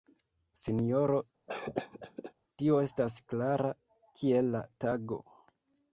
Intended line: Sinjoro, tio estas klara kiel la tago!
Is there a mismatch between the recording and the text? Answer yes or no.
no